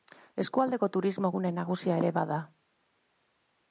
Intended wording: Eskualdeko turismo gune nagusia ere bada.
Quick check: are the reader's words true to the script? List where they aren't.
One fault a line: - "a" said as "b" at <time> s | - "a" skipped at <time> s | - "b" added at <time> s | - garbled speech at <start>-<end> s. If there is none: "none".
none